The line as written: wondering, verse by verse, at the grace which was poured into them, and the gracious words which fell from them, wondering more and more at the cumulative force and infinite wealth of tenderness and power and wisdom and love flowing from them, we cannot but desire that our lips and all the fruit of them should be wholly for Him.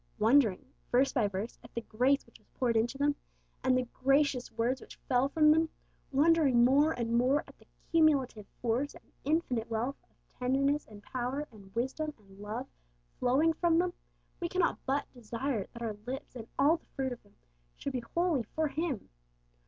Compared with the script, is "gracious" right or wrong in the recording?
right